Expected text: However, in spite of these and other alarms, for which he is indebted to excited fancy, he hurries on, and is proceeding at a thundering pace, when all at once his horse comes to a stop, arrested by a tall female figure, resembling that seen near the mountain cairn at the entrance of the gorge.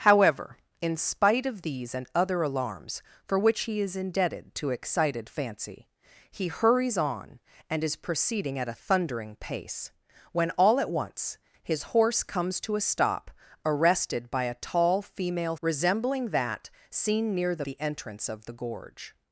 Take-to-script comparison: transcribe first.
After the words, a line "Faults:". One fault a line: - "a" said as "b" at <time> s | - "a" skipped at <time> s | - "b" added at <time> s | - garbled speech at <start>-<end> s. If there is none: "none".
However, in spite of these and other alarms, for which he is indebted to excited fancy, he hurries on, and is proceeding at a thundering pace, when all at once his horse comes to a stop, arrested by a tall female resembling that seen near the the entrance of the gorge.
Faults:
- "figure" skipped at 15.6 s
- "mountain cairn at" skipped at 17.6 s